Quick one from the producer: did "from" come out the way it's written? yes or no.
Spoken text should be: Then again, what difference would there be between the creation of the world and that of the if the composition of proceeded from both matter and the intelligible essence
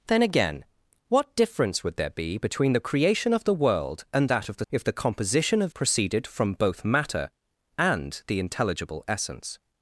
yes